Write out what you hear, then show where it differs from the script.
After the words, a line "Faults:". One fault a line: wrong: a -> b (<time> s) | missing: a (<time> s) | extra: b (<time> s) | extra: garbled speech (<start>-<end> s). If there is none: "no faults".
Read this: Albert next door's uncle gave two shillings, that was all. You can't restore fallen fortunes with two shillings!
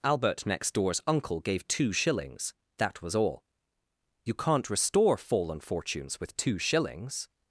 Albert next door's uncle gave two shillings, that was all. You can't restore fallen fortunes with two shillings!
Faults:
no faults